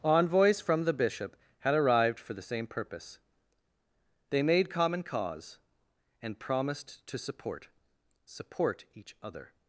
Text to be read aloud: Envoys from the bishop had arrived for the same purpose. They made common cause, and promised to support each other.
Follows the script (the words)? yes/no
no